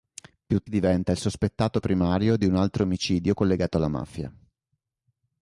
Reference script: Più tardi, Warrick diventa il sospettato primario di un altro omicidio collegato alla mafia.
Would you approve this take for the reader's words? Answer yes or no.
no